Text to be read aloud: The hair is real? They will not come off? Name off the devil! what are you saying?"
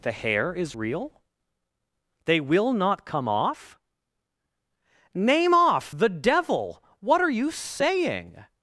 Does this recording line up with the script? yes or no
yes